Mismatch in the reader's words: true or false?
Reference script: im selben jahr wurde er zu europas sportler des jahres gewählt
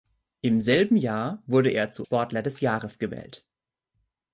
true